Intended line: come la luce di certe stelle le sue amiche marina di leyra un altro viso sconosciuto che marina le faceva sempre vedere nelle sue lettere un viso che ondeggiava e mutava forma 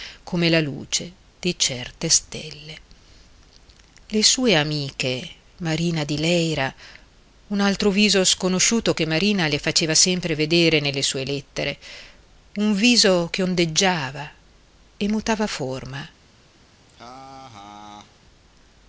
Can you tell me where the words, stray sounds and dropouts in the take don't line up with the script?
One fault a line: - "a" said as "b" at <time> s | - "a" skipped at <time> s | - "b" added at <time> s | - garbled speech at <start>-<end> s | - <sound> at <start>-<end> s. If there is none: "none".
- laugh at 16.9-18.2 s